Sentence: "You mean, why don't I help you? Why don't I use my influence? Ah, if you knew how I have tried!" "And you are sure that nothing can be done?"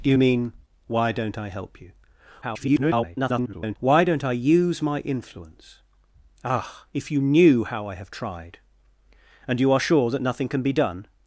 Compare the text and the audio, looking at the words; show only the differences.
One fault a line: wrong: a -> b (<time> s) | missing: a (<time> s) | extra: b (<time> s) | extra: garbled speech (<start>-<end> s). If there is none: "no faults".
extra: garbled speech (2.4-3.8 s)